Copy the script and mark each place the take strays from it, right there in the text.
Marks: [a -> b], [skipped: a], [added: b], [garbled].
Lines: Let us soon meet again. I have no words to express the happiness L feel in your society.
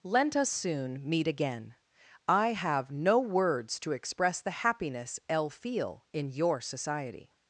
[Let -> Lent] us soon meet again. I have no words to express the happiness L feel in your society.